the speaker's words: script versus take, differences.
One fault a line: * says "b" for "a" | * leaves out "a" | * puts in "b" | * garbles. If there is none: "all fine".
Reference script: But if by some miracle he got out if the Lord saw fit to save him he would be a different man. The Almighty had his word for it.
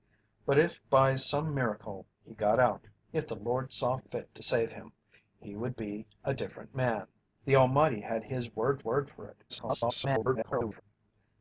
* puts in "word"
* garbles